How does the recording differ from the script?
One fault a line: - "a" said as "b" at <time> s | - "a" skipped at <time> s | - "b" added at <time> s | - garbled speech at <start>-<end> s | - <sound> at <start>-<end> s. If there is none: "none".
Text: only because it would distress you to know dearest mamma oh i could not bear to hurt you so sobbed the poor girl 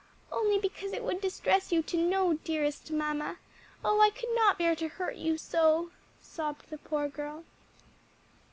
none